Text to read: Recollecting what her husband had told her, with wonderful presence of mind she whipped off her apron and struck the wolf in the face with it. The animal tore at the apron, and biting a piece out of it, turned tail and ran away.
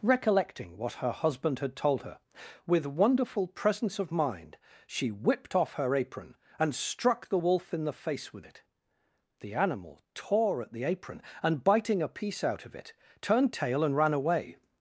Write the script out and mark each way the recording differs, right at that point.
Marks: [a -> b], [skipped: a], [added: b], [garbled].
Recollecting what her husband had told her, with wonderful presence of mind she whipped off her apron and struck the wolf in the face with it. The animal tore at the apron, and biting a piece out of it, turned tail and ran away.